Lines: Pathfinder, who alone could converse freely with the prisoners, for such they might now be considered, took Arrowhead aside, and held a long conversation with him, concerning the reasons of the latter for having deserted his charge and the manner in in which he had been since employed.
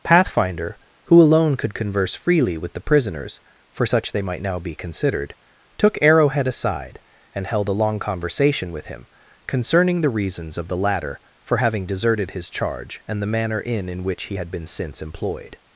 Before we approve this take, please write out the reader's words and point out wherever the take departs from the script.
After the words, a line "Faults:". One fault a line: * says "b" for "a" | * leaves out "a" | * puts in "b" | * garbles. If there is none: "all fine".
Pathfinder, who alone could converse freely with the prisoners, for such they might now be considered, took Arrowhead aside, and held a long conversation with him, concerning the reasons of the latter for having deserted his charge and the manner in in which he had been since employed.
Faults:
all fine